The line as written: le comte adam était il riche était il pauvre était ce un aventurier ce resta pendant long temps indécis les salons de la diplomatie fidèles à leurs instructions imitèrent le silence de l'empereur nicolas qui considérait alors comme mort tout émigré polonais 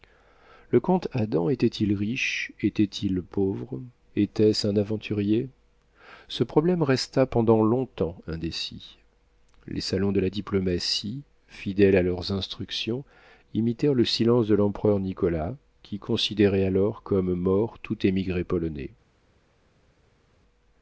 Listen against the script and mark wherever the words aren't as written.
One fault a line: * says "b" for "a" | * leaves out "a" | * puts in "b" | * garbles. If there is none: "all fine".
* puts in "problème"